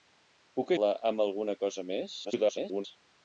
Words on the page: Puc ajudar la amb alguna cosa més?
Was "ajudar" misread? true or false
true